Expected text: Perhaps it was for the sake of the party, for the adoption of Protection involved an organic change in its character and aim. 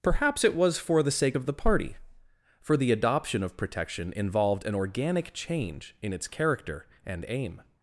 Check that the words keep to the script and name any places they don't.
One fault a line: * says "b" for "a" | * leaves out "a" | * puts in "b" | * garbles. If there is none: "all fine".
all fine